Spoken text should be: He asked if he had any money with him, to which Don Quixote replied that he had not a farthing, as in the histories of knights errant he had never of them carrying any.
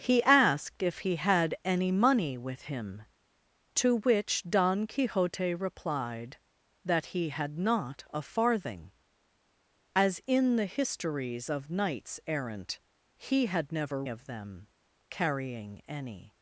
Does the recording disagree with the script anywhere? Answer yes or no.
no